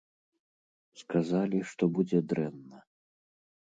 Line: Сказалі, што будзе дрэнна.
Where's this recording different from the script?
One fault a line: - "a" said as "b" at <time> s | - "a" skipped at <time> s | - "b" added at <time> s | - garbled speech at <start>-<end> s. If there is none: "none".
none